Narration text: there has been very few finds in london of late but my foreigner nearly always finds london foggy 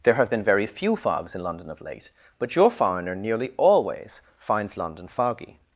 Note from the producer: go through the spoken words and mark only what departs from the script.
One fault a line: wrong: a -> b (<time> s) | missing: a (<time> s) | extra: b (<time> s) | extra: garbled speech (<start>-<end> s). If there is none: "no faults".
wrong: has -> have (0.1 s)
wrong: finds -> fogs (0.9 s)
wrong: my -> your (2.5 s)